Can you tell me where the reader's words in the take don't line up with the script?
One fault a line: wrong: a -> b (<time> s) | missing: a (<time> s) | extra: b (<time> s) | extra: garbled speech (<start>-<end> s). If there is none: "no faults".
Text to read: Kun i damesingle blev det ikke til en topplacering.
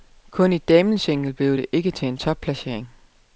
no faults